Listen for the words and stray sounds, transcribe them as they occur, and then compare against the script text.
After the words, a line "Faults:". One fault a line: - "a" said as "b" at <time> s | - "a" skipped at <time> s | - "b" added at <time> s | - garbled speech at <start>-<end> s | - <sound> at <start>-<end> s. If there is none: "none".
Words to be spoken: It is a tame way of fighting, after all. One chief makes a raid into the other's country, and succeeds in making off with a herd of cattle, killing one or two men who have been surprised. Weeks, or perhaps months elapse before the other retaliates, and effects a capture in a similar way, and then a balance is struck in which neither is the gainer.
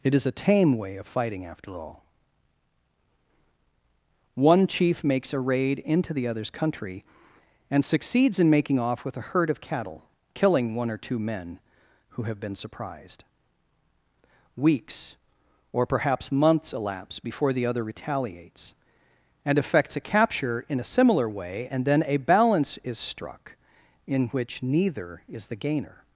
It is a tame way of fighting, after all. One chief makes a raid into the other's country, and succeeds in making off with a herd of cattle, killing one or two men who have been surprised. Weeks, or perhaps months elapse before the other retaliates, and effects a capture in a similar way, and then a balance is struck in which neither is the gainer.
Faults:
none